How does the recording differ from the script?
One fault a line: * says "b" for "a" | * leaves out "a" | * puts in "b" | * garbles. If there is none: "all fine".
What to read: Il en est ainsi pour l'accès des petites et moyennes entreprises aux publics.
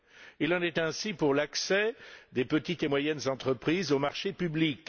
* puts in "marchés"